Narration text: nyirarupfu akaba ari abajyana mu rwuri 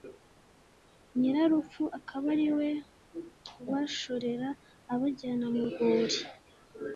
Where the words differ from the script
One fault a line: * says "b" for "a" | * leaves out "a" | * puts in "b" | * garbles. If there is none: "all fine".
* puts in "we ubashorera"